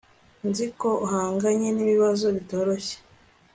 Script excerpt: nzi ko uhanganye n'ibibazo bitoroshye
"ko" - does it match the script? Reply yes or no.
yes